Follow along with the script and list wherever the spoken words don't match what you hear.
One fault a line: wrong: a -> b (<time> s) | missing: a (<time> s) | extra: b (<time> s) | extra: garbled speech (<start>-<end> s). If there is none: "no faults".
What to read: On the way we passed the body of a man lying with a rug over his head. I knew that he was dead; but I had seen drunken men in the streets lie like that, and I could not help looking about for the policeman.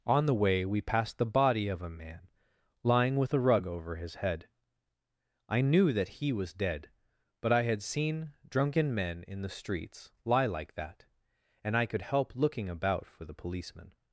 missing: not (12.0 s)